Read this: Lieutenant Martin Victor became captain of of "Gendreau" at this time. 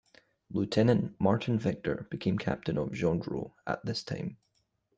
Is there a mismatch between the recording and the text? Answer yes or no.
yes